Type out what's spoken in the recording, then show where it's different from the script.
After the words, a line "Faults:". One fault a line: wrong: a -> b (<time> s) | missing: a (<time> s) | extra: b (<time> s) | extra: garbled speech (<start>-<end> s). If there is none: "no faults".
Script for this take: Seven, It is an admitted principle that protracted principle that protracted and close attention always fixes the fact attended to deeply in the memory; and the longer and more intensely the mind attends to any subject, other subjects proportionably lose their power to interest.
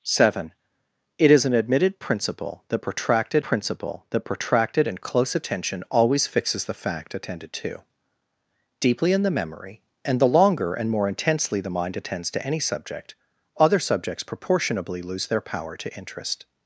Seven, It is an admitted principle that protracted principle that protracted and close attention always fixes the fact attended to deeply in the memory; and the longer and more intensely the mind attends to any subject, other subjects proportionably lose their power to interest.
Faults:
no faults